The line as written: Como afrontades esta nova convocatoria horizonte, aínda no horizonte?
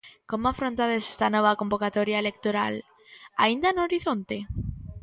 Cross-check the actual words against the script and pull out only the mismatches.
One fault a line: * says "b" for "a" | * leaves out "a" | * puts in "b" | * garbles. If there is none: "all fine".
* says "electoral" for "horizonte"